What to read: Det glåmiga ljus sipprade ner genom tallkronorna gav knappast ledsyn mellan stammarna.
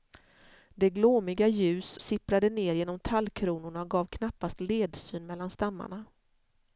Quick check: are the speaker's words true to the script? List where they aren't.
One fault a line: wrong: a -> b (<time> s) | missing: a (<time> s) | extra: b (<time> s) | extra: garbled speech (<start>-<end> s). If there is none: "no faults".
no faults